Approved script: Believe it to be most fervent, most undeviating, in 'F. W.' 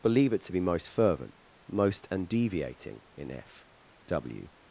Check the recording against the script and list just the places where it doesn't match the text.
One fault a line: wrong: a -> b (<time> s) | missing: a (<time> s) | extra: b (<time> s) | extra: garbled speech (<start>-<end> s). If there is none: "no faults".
no faults